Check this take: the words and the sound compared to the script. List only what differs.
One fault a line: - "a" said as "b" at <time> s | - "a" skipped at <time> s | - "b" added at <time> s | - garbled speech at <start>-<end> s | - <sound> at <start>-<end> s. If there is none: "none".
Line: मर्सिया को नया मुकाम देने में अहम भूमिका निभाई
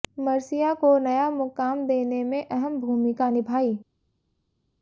none